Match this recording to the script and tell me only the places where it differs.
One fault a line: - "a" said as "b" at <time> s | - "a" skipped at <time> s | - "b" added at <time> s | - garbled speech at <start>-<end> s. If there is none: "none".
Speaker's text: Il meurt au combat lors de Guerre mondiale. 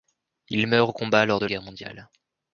none